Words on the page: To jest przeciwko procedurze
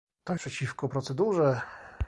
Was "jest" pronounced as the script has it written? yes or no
no